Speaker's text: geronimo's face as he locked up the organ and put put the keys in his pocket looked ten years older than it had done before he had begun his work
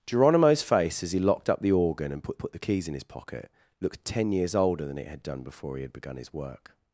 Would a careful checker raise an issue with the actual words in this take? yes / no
no